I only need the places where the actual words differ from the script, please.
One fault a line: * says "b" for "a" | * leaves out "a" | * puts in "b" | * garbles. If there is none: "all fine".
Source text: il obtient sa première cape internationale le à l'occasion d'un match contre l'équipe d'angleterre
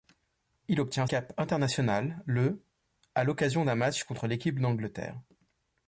* leaves out "sa première"